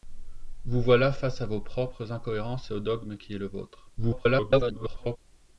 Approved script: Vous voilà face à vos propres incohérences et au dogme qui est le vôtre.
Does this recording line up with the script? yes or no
no